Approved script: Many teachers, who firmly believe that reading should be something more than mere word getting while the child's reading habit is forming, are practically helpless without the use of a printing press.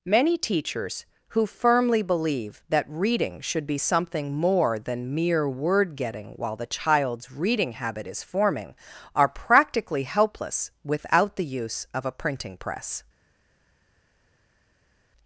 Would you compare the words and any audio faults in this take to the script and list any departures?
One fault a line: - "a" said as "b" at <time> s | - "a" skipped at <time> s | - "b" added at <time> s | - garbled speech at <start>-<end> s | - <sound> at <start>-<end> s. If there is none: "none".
none